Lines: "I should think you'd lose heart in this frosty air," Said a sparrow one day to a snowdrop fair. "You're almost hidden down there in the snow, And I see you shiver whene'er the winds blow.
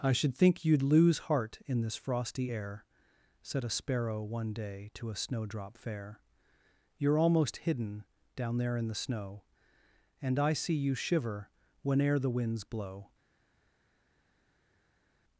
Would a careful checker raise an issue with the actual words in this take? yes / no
no